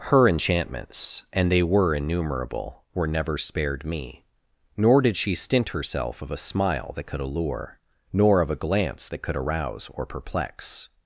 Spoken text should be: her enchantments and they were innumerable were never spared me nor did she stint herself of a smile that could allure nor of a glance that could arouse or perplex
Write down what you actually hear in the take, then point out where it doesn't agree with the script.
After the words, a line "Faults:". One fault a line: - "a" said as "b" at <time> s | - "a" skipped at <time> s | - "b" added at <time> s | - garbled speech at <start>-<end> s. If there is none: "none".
her enchantments and they were innumerable were never spared me nor did she stint herself of a smile that could allure nor of a glance that could arouse or perplex
Faults:
none